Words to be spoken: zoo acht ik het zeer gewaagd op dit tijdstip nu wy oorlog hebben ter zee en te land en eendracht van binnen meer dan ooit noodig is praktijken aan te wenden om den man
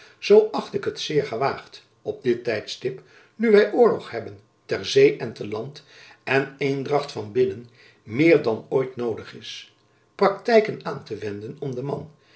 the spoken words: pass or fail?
pass